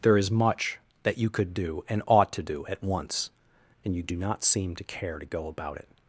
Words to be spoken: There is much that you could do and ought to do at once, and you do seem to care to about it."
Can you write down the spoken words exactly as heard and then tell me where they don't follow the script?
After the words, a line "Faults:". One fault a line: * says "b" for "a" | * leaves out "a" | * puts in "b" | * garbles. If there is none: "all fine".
There is much that you could do and ought to do at once, and you do not seem to care to go about it."
Faults:
* puts in "not"
* puts in "go"